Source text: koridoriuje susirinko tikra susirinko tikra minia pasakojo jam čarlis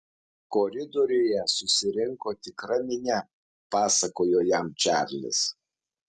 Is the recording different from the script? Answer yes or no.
yes